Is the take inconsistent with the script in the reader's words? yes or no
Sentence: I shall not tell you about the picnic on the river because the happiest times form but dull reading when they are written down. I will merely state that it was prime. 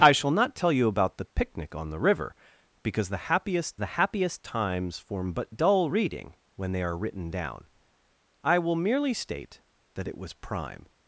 yes